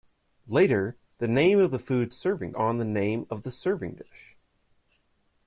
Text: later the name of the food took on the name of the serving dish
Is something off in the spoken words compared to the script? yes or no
yes